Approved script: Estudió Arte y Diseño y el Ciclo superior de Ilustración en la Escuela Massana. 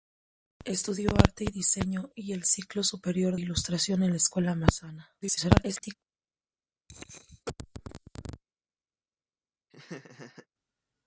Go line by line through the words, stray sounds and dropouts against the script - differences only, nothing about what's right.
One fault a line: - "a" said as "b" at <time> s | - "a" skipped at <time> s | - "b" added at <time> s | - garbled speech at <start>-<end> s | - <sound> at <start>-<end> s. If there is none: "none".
- "de" skipped at 3.4 s
- garbled speech at 5.2-6.0 s
- cough at 6.9-8.4 s
- laugh at 9.7-10.5 s